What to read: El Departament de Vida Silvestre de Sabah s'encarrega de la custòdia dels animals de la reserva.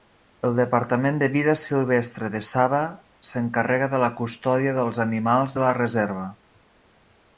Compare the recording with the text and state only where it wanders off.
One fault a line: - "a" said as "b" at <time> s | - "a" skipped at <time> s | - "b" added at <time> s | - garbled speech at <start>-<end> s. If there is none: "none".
none